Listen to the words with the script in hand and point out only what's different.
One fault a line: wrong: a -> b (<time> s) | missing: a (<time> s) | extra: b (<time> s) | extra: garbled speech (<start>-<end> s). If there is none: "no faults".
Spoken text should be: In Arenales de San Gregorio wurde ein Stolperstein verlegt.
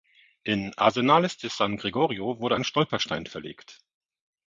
no faults